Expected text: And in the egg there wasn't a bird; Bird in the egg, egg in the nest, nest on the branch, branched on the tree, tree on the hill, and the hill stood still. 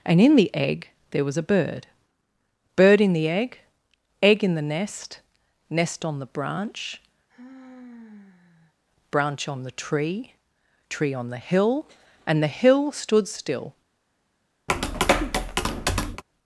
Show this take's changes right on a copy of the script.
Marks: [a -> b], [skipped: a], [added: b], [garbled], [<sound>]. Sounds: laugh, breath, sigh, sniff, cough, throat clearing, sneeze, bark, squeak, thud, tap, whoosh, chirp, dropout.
And in the egg there [wasn't -> was] a bird; Bird in the egg, egg in the nest, nest on the branch, [sigh] [branched -> branch] on the tree, tree on the hill, and the hill stood still. [tap]